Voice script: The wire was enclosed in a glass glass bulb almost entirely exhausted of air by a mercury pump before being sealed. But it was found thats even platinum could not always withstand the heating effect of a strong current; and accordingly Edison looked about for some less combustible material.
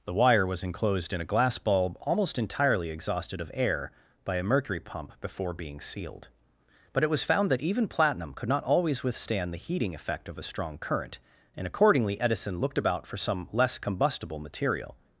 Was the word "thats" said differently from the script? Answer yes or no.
yes